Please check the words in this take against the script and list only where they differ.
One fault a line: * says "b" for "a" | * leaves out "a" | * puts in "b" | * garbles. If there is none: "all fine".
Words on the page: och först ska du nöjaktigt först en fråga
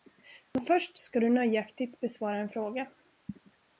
* says "men" for "och"
* says "besvara" for "först"